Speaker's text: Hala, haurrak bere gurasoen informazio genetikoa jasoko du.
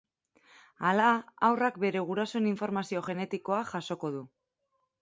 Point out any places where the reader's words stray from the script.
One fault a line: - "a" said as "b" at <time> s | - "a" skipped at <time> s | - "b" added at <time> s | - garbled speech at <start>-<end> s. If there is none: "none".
none